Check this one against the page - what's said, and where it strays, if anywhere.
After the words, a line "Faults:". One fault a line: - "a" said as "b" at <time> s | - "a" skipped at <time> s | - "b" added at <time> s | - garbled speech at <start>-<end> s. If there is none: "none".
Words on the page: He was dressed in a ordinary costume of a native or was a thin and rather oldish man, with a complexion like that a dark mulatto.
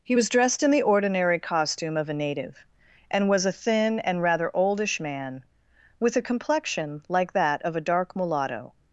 He was dressed in the ordinary costume of a native and was a thin and rather oldish man, with a complexion like that of a dark mulatto.
Faults:
- "a" said as "the" at 0.7 s
- "or" said as "and" at 3.1 s
- "of" added at 7.6 s